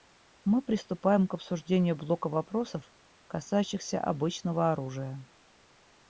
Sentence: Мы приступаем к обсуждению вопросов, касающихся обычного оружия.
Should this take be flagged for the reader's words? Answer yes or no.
yes